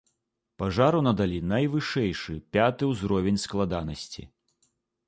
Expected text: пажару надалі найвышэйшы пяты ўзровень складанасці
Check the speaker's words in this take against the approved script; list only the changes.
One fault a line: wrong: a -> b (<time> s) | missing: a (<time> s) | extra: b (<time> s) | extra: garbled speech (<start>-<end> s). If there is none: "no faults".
no faults